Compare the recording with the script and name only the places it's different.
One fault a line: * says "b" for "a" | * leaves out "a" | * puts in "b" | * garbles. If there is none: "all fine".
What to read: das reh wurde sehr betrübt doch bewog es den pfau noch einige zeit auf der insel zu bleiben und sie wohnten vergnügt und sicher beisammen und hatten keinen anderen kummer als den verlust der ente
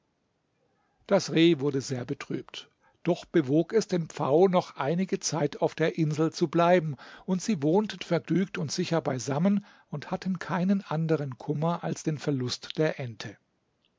all fine